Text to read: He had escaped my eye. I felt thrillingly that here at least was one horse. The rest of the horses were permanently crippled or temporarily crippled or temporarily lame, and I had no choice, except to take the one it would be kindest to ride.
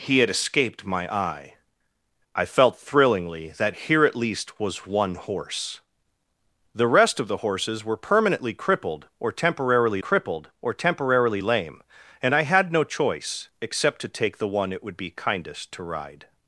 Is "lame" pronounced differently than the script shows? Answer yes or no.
no